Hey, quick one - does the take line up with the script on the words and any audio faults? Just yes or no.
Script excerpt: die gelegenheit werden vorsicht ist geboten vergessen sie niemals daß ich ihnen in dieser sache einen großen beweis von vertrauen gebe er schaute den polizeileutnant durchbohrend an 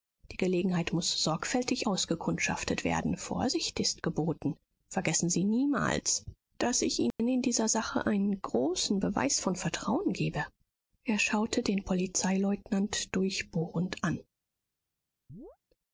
no